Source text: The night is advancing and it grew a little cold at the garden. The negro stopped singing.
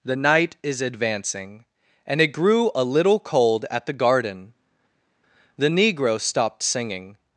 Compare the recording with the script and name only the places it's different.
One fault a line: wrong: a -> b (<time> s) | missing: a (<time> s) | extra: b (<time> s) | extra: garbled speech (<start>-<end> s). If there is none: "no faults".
no faults